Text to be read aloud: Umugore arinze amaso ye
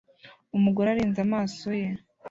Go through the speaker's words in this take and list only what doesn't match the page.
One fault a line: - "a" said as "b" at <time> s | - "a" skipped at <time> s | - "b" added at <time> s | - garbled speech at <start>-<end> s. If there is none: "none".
none